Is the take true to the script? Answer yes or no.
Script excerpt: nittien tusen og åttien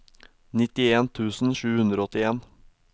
no